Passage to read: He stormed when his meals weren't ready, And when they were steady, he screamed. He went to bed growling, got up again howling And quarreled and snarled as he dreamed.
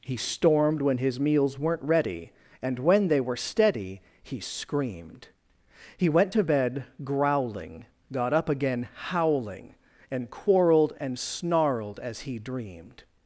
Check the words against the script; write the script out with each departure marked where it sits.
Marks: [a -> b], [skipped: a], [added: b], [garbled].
He stormed when his meals weren't ready, And when they were steady, he screamed. He went to bed growling, got up again howling And quarreled and snarled as he dreamed.